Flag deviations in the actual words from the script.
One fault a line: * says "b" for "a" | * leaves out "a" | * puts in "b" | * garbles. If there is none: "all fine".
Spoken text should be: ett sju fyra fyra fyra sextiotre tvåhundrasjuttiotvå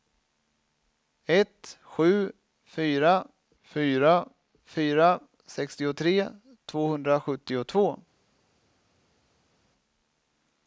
all fine